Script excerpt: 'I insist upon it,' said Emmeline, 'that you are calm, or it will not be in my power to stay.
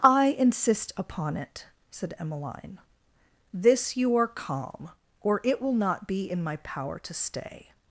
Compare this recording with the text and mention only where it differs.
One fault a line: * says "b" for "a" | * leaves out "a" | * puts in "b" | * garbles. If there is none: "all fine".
* says "this" for "that"